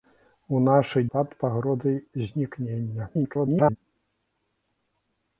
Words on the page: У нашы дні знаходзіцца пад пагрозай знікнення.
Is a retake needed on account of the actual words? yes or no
yes